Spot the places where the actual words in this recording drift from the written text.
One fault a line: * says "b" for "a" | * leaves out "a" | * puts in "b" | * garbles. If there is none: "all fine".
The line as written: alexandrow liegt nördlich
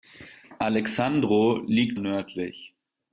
all fine